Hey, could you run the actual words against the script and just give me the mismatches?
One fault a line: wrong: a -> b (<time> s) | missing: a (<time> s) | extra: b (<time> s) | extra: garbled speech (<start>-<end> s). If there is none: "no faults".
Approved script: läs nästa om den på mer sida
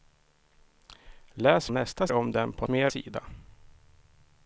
no faults